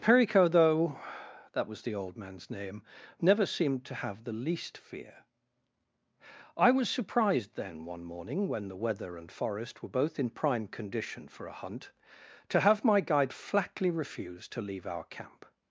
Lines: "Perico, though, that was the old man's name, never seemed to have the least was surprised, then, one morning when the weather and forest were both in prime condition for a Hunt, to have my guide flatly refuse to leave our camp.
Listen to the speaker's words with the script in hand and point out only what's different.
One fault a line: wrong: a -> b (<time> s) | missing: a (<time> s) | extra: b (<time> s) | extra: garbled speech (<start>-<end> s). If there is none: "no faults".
extra: fear I (4.8 s)